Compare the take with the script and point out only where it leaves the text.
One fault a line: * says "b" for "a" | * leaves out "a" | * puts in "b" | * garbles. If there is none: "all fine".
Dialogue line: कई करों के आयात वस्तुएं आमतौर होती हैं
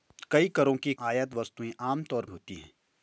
all fine